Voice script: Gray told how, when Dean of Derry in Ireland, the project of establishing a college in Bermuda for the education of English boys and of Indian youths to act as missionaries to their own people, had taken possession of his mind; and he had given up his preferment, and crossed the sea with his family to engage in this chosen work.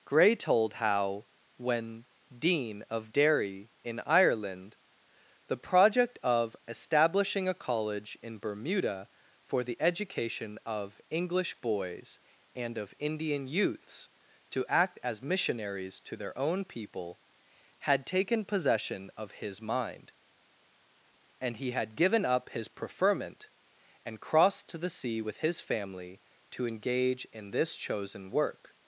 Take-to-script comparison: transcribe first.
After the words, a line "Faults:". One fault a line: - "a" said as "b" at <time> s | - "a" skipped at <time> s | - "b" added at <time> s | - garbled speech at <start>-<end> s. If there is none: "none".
Gray told how, when Dean of Derry in Ireland, the project of establishing a college in Bermuda for the education of English boys and of Indian youths to act as missionaries to their own people, had taken possession of his mind; and he had given up his preferment, and crossed to the sea with his family to engage in this chosen work.
Faults:
- "to" added at 24.7 s